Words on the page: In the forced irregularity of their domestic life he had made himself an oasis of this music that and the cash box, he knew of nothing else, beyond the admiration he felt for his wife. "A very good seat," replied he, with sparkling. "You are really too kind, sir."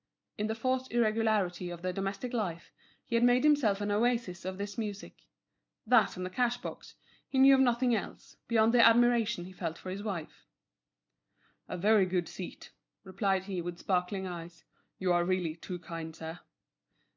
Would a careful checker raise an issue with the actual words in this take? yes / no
yes